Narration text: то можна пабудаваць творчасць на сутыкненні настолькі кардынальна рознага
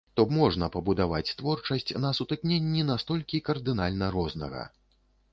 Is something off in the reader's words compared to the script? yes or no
no